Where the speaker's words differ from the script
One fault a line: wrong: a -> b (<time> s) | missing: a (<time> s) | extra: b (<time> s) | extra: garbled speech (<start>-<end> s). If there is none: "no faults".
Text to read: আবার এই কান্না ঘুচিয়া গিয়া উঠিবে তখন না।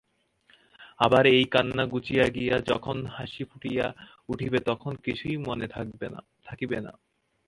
extra: যখন হাসি ফুটিয়া (2.7 s)
extra: কিছুই মনে থাকিবে (5.0 s)